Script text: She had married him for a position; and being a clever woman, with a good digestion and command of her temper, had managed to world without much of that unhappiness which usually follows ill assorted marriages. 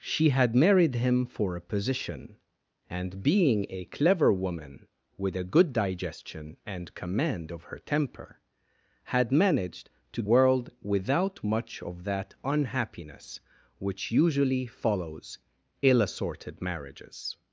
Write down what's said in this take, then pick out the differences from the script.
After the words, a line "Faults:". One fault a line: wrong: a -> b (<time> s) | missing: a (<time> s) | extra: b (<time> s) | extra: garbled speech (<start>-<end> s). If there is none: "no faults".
She had married him for a position; and being a clever woman, with a good digestion and command of her temper, had managed to world without much of that unhappiness which usually follows ill assorted marriages.
Faults:
no faults